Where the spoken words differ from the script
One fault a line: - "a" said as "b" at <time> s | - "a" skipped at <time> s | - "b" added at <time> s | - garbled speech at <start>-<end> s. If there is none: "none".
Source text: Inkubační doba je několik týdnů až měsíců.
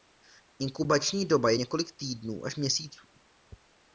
none